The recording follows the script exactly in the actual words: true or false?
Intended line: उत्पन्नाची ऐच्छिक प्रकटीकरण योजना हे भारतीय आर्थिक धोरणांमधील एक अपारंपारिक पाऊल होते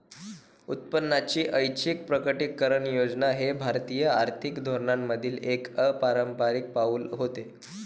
true